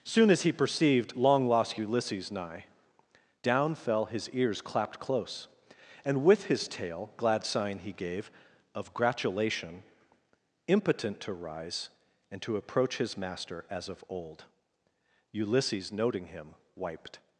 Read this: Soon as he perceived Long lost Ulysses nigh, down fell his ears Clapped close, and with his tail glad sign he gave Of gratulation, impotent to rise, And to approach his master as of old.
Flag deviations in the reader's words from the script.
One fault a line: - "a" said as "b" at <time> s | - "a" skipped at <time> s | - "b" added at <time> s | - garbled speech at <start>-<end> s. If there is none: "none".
- "Ulysses noting him wiped" added at 15.3 s